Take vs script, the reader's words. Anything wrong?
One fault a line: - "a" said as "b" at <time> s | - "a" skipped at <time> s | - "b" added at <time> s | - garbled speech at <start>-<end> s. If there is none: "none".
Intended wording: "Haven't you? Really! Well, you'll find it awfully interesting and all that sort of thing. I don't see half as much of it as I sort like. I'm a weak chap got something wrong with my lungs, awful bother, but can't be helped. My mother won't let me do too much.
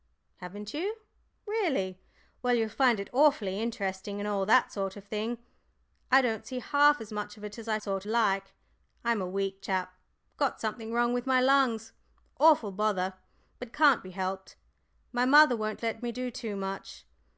none